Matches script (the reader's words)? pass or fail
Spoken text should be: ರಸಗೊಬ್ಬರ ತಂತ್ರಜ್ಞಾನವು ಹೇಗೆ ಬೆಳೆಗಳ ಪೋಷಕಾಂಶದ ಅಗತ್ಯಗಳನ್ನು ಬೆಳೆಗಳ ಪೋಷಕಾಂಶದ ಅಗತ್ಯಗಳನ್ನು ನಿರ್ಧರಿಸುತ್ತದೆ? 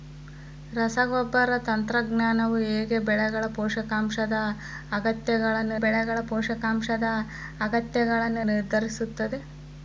pass